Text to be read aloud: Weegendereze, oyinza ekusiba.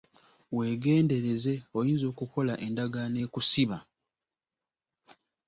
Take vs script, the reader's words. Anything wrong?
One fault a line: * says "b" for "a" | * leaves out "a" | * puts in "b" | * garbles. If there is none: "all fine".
* puts in "okukola endagaano"